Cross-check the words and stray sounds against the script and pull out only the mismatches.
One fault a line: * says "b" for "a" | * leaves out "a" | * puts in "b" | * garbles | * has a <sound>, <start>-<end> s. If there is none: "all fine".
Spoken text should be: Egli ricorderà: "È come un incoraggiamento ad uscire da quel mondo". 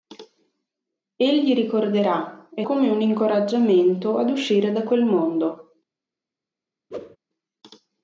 * has a whoosh, 6.9-7.2 s